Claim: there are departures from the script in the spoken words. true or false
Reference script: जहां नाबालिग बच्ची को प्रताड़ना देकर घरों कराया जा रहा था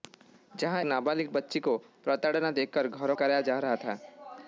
false